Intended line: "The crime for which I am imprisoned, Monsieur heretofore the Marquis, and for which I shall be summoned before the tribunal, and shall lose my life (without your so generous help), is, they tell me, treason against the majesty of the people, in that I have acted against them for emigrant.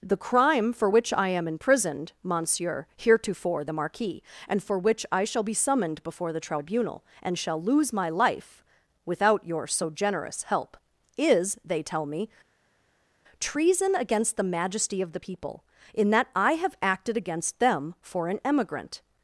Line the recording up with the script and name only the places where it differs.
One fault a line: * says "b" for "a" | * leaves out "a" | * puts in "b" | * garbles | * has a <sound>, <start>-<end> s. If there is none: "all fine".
* puts in "an"